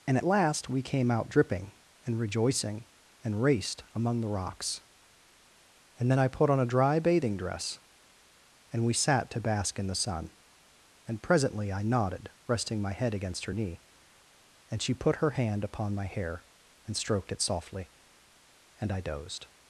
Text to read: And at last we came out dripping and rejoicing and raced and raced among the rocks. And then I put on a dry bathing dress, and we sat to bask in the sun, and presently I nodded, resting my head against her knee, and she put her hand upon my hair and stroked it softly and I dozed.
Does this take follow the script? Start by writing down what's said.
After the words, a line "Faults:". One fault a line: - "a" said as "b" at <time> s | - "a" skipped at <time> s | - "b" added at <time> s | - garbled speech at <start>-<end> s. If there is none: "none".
And at last we came out dripping and rejoicing and raced among the rocks. And then I put on a dry bathing dress, and we sat to bask in the sun, and presently I nodded, resting my head against her knee, and she put her hand upon my hair and stroked it softly and I dozed.
Faults:
- "and raced" skipped at 3.8 s